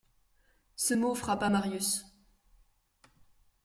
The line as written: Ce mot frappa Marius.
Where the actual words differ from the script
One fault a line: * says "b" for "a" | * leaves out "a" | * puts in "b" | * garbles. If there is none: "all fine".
all fine